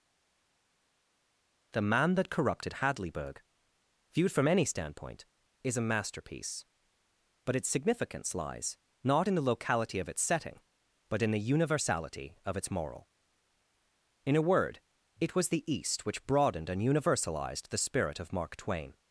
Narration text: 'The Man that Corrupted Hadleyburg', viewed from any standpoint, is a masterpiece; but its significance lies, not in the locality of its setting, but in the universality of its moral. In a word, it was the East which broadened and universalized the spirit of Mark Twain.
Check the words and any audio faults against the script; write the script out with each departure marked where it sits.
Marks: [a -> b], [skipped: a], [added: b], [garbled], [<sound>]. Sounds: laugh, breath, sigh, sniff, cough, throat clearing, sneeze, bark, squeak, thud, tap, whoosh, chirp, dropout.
'The Man that Corrupted Hadleyburg', viewed from any standpoint, is a masterpiece; but its significance lies, not in the locality of its setting, but in the universality of its moral. In a word, it was the East which broadened and universalized the spirit of Mark Twain.